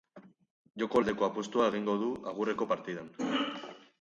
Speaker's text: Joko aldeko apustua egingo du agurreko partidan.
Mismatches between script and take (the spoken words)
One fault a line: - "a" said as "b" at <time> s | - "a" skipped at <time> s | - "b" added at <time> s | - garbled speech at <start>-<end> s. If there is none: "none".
none